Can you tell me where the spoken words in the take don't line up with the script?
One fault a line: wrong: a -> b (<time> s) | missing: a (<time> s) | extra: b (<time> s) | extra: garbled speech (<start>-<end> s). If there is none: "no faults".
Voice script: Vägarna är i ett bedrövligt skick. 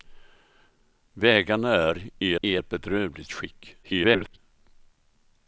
extra: i (2.4 s)
extra: garbled speech (3.8-4.4 s)